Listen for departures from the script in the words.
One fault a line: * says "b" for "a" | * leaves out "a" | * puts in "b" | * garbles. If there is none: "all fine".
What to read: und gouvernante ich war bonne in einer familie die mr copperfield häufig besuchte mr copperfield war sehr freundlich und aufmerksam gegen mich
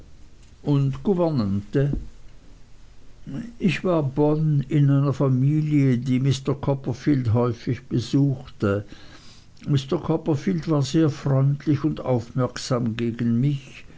all fine